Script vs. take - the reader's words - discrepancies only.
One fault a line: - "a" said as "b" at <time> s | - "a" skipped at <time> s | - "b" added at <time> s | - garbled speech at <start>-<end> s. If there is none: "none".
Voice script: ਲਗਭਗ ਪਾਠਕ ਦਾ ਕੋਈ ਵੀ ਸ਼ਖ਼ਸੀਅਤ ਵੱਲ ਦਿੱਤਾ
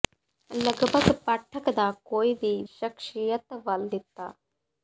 none